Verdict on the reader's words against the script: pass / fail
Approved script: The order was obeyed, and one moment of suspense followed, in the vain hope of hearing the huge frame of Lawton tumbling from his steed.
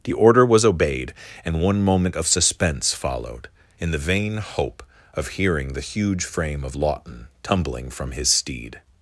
pass